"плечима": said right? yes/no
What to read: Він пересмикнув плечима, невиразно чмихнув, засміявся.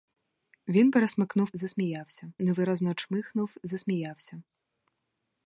no